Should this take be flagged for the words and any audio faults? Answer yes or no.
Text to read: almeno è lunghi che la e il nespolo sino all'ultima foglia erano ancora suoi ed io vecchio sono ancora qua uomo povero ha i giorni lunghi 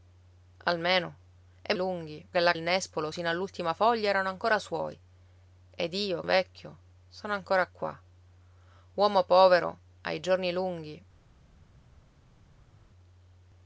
no